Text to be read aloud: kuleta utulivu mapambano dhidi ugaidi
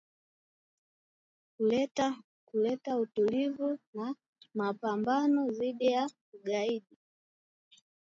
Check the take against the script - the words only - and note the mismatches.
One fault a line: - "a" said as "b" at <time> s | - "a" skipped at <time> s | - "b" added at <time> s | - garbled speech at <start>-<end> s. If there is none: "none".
- "na" added at 3.9 s
- "ya" added at 5.9 s